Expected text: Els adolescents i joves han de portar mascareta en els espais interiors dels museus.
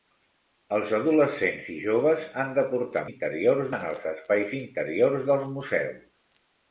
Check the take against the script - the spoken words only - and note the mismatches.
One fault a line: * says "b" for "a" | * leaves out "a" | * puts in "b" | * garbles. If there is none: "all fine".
* says "interiors" for "mascareta"